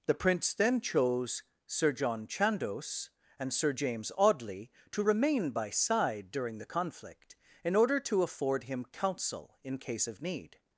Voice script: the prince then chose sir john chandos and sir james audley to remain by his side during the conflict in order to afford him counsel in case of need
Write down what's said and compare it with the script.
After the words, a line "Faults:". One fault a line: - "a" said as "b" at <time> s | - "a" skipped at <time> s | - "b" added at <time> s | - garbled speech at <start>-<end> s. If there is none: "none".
the prince then chose sir john chandos and sir james audley to remain by side during the conflict in order to afford him counsel in case of need
Faults:
- "his" skipped at 5.7 s